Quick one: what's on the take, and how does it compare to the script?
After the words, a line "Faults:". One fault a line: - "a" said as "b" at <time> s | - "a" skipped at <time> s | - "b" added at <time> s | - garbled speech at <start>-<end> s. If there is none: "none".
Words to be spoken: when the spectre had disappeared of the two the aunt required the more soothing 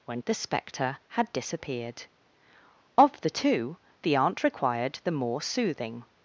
when the spectre had disappeared of the two the aunt required the more soothing
Faults:
none